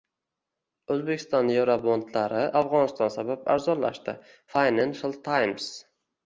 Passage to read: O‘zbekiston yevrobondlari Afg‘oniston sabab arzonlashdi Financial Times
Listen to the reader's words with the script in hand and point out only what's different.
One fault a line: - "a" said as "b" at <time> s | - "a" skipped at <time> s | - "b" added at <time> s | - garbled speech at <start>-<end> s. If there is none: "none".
none